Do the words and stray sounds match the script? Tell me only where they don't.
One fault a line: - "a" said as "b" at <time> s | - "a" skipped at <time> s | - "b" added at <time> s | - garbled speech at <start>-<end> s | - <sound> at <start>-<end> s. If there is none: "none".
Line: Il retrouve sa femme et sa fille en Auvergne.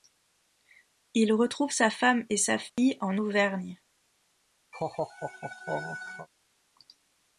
- dropout at 2.7-2.8 s
- laugh at 4.7-6.3 s